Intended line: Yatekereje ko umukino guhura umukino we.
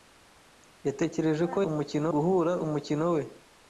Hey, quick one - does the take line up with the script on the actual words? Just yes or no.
yes